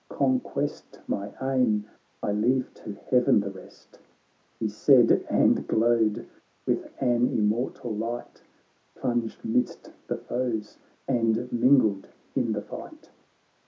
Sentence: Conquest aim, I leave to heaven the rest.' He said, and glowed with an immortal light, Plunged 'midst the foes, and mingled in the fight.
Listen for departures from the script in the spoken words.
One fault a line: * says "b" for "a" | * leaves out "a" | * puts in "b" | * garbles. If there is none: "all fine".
* puts in "my"